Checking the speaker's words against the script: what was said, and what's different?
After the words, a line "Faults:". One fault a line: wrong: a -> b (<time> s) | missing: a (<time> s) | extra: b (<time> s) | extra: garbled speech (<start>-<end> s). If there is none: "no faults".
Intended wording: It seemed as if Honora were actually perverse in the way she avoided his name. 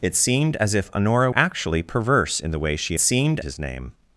It seemed as if Honora actually perverse in the way she seemed his name.
Faults:
missing: were (1.3 s)
wrong: avoided -> seemed (3.0 s)